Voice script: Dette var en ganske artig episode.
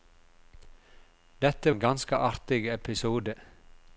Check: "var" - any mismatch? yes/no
yes